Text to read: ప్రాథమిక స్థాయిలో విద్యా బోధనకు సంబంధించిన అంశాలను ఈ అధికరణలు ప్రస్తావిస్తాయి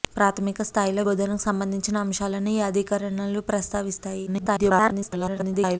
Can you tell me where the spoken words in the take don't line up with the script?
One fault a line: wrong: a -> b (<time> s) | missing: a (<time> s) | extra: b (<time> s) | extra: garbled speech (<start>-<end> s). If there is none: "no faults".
missing: విద్యా (1.0 s)
extra: garbled speech (4.3-5.8 s)